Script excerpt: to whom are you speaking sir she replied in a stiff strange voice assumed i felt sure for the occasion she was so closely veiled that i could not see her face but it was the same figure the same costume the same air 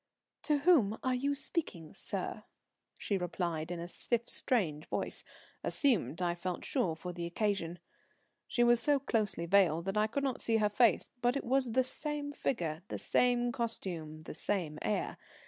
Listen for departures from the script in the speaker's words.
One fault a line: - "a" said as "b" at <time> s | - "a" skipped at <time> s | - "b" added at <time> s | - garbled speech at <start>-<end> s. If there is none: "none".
none